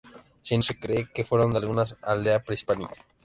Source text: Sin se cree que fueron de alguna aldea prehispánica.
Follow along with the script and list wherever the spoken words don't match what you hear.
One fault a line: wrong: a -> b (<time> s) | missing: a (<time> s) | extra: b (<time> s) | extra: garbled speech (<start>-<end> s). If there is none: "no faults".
no faults